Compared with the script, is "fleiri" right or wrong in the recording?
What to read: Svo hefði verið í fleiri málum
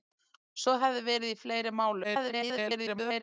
right